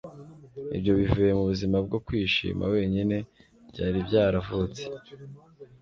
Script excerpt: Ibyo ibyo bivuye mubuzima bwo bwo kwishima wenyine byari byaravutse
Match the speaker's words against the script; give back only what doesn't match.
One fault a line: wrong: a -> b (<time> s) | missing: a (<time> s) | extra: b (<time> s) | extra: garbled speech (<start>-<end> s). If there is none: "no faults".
missing: ibyo (0.9 s)
missing: bwo (2.0 s)